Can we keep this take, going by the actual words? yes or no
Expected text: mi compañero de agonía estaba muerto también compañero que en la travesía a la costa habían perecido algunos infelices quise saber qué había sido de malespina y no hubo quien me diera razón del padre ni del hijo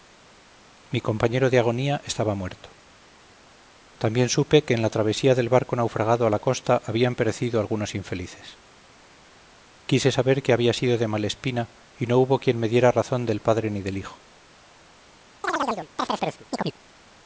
no